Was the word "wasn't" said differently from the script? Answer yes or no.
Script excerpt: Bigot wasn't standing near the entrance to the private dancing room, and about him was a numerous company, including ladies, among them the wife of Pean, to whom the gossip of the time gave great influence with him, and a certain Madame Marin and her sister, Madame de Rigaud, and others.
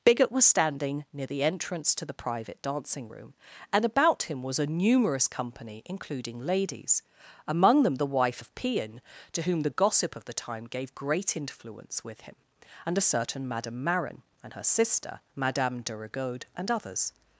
yes